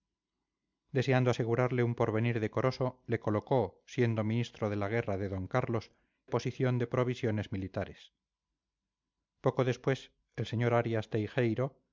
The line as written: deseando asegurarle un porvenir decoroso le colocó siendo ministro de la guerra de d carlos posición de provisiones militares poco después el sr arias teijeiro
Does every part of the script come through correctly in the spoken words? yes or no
yes